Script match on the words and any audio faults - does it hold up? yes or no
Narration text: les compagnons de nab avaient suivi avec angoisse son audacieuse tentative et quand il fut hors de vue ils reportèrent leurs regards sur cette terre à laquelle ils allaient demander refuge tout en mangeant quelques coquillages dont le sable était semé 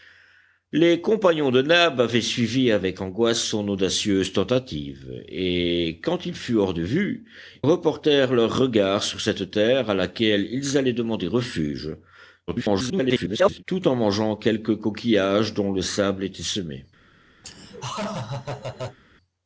no